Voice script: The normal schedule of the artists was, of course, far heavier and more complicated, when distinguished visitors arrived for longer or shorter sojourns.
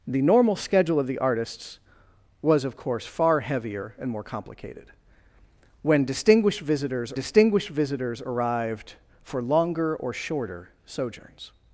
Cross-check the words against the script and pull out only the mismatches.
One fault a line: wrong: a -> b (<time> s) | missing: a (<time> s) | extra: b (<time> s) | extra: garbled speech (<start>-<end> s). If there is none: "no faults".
extra: distinguished visitors (7.1 s)